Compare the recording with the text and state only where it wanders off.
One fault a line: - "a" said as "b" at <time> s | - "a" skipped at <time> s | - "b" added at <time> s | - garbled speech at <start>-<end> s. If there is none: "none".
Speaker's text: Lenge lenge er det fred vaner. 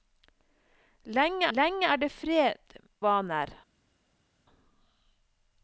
none